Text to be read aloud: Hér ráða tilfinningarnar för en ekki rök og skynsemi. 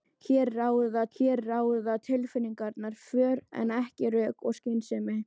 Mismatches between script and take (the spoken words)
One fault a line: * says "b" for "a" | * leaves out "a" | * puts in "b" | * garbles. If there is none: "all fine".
* puts in "hér ráða"